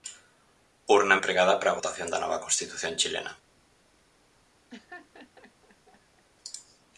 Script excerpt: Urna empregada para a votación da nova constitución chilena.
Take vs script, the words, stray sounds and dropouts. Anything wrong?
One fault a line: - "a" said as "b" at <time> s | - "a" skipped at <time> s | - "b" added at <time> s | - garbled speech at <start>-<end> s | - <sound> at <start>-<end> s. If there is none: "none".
- laugh at 4.7-6.2 s